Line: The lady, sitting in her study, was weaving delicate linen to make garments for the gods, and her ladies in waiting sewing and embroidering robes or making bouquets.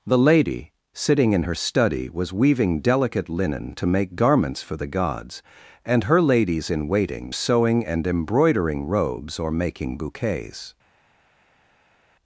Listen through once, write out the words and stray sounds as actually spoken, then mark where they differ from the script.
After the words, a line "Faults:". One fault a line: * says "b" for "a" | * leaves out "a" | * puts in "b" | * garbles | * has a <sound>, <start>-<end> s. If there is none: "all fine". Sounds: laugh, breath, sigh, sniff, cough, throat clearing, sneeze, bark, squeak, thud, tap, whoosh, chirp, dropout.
The lady, sitting in her study, was weaving delicate linen to make garments for the gods, and her ladies in waiting sewing and embroidering robes or making bouquets.
Faults:
all fine